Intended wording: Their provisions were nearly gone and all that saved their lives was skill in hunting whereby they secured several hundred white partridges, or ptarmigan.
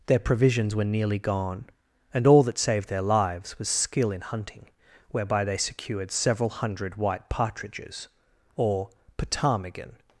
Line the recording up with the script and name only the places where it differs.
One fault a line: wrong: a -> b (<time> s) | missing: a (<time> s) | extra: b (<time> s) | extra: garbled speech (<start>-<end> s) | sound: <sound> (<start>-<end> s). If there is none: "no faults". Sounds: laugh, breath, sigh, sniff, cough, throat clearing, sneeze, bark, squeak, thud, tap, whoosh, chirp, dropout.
no faults